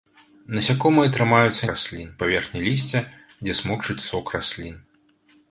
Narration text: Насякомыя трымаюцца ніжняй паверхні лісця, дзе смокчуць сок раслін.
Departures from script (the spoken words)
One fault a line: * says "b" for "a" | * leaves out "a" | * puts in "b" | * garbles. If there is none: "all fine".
* says "раслін" for "ніжняй"